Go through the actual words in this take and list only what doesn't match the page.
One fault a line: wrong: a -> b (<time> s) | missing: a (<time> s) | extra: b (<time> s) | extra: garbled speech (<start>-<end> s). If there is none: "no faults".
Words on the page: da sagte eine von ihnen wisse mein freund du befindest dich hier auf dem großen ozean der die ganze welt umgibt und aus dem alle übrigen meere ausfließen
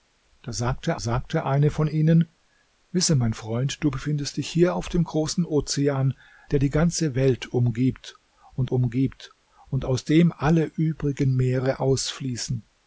extra: sagte (1.0 s)
extra: umgibt und (8.6 s)